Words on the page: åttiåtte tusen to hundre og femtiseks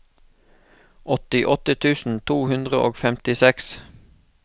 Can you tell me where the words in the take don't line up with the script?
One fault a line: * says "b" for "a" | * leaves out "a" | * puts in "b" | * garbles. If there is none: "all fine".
all fine